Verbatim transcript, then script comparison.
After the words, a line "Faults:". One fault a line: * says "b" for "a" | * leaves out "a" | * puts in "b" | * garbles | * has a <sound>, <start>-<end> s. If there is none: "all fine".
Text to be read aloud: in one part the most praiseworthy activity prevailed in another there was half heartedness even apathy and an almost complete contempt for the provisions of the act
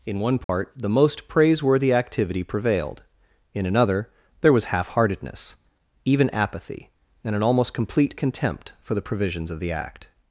in one part the most praiseworthy activity prevailed in another there was half heartedness even apathy and an almost complete contempt for the provisions of the act
Faults:
* has a dropout, 0.4-0.5 s